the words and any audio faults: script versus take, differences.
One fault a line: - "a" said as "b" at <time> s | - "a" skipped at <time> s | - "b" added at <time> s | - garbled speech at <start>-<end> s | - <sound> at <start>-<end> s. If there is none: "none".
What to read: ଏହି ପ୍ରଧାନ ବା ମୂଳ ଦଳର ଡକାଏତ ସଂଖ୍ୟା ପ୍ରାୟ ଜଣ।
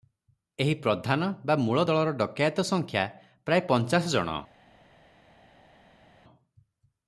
- "ପଞ୍ଚାଶ" added at 3.7 s